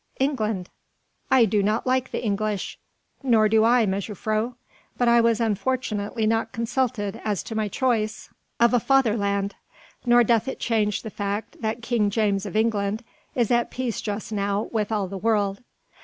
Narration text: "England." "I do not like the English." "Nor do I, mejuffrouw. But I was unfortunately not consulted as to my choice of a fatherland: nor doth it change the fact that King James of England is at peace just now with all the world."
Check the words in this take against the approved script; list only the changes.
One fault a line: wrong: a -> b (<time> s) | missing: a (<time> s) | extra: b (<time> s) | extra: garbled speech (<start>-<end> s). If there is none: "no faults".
no faults